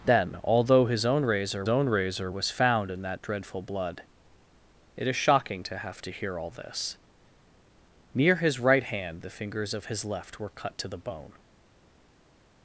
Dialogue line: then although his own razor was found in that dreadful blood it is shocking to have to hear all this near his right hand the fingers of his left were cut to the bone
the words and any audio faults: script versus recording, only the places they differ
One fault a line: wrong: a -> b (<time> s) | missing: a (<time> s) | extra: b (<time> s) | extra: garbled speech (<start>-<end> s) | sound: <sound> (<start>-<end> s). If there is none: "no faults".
extra: own razor (1.7 s)